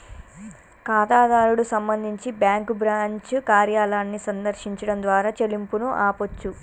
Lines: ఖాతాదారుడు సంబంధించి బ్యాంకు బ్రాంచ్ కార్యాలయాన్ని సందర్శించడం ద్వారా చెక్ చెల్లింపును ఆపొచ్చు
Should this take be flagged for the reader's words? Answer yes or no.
yes